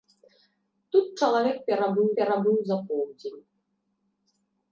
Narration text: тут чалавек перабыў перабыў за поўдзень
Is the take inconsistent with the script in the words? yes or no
no